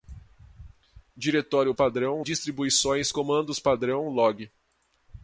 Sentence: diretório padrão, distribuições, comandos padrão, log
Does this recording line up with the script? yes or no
yes